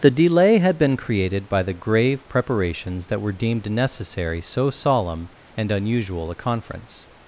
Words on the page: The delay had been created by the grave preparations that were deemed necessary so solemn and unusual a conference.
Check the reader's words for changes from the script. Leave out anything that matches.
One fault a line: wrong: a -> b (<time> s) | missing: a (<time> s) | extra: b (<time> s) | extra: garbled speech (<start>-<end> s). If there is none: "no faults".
no faults